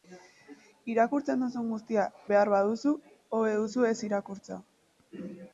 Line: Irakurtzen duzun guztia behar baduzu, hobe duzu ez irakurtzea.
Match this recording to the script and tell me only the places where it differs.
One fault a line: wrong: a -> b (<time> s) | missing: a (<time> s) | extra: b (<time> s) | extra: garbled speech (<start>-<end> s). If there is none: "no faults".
no faults